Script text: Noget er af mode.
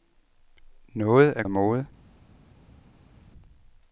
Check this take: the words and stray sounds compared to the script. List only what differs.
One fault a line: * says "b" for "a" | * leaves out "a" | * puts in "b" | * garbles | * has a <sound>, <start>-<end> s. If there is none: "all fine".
all fine